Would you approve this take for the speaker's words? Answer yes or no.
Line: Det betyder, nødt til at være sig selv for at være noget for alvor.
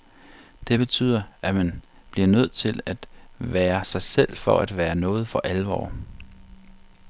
no